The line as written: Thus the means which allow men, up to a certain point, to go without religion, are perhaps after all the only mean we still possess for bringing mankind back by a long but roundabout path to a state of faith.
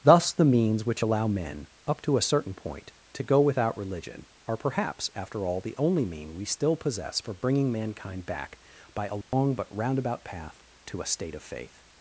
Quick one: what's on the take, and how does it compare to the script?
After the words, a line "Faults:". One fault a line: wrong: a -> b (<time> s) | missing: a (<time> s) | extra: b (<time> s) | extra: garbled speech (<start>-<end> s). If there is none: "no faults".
Thus the means which allow men, up to a certain point, to go without religion, are perhaps after all the only mean we still possess for bringing mankind back by a long but roundabout path to a state of faith.
Faults:
no faults